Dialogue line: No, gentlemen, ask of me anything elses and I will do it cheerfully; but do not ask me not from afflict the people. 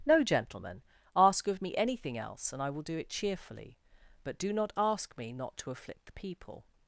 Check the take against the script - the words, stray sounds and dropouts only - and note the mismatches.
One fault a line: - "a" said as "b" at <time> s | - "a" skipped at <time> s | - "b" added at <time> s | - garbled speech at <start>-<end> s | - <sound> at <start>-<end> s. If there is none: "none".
- "elses" said as "else" at 2.2 s
- "from" said as "to" at 5.6 s